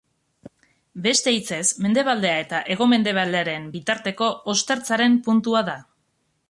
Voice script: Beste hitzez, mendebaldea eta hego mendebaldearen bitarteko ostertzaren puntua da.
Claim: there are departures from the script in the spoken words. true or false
false